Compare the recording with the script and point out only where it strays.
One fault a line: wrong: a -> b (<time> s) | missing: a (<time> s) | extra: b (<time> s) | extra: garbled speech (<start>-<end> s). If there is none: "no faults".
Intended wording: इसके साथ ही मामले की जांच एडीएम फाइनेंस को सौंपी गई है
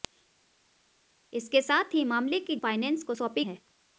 missing: जांच एडीएम (2.6 s)
missing: गई (3.4 s)